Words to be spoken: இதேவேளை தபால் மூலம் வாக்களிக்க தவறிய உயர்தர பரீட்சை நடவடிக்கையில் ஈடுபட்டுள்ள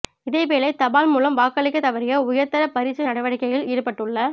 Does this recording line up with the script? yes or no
yes